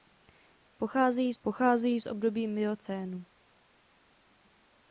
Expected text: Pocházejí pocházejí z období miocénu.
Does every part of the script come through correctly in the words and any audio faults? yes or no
yes